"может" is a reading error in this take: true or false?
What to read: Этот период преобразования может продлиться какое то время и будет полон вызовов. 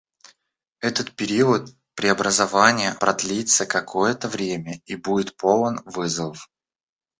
true